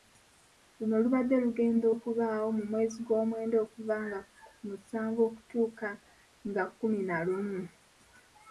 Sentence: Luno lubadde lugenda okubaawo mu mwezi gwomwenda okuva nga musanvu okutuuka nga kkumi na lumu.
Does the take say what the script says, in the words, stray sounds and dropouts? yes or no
yes